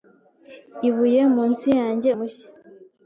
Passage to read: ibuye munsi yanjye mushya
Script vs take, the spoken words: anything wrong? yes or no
no